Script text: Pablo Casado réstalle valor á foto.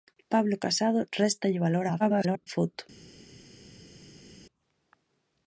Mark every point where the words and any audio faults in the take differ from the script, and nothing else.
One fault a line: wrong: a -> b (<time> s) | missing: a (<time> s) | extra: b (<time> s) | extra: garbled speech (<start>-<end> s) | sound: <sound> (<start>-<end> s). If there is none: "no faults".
extra: garbled speech (2.0-2.5 s)